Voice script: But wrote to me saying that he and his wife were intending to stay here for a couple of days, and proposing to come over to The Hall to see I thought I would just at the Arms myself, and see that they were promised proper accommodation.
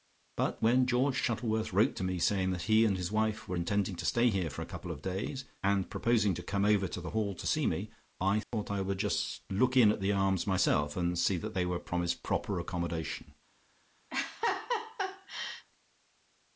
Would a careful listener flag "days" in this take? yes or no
no